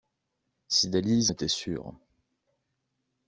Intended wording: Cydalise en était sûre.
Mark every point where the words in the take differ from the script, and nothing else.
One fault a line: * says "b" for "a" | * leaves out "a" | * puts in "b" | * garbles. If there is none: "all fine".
* leaves out "en"